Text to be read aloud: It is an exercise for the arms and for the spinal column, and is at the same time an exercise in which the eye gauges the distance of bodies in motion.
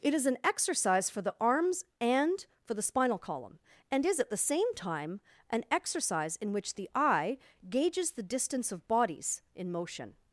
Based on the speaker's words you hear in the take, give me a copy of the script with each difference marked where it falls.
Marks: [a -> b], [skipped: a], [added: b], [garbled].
It is an exercise for the arms and for the spinal column, and is at the same time an exercise in which the eye gauges the distance of bodies in motion.